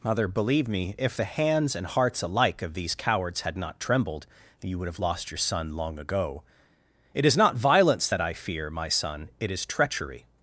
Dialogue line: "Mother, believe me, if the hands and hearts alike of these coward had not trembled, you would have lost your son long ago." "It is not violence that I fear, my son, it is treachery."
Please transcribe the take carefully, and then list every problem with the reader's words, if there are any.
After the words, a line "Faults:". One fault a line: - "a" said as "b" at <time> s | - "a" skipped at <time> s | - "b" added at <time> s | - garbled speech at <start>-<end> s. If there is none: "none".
"Mother, believe me, if the hands and hearts alike of these cowards had not trembled, you would have lost your son long ago." "It is not violence that I fear, my son, it is treachery."
Faults:
- "coward" said as "cowards" at 3.0 s